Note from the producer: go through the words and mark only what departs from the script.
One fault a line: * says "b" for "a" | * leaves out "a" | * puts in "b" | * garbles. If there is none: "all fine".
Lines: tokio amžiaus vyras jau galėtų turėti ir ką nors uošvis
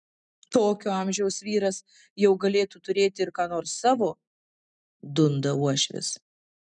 * puts in "savo dunda"